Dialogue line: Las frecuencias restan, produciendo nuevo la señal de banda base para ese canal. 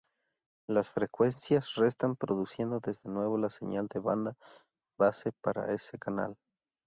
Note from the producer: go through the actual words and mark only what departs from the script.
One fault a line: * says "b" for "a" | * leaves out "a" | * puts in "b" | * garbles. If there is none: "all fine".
* puts in "de"